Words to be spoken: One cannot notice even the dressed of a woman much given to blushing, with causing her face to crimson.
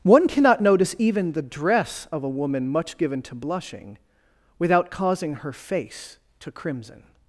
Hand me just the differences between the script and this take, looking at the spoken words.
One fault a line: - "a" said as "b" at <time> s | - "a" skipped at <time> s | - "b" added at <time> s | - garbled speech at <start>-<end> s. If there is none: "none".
- "dressed" said as "dress" at 1.4 s
- "with" said as "without" at 4.6 s